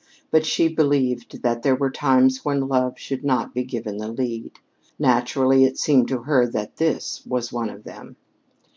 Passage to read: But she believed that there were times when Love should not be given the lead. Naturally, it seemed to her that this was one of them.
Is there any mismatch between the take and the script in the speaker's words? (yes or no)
no